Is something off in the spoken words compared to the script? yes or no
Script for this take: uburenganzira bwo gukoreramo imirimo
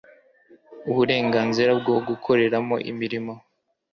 no